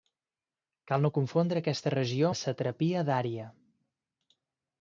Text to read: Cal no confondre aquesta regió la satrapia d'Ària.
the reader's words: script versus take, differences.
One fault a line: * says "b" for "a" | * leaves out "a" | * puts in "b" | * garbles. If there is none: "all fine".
all fine